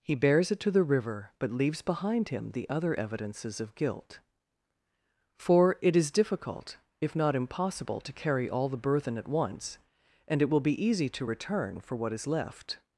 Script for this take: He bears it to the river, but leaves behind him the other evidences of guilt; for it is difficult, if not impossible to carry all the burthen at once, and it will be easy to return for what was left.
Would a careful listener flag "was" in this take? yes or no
yes